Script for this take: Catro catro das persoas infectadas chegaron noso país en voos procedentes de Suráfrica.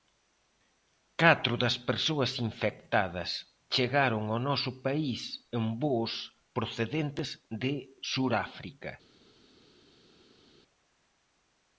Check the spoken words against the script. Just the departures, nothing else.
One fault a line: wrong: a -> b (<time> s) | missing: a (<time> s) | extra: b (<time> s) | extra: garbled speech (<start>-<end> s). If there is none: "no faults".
missing: catro (1.5 s)
extra: ao (4.3 s)